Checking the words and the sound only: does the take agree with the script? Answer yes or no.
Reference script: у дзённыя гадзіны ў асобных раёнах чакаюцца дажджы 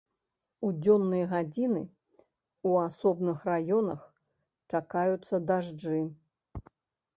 yes